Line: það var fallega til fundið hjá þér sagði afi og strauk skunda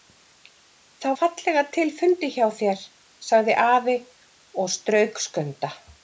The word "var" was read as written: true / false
false